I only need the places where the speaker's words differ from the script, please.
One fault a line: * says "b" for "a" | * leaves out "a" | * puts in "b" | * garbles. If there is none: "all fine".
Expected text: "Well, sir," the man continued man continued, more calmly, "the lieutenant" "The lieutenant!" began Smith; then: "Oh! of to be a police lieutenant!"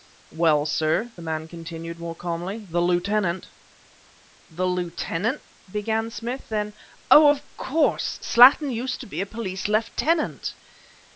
* leaves out "man continued"
* puts in "course Slattin used"